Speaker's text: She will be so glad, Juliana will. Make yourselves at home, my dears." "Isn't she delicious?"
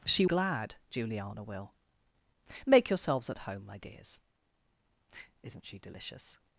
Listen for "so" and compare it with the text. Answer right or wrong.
wrong